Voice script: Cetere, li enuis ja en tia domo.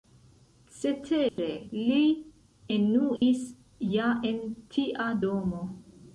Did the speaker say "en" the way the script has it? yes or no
yes